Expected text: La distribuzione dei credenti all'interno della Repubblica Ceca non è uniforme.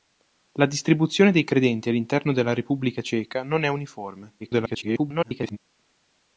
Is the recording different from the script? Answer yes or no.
yes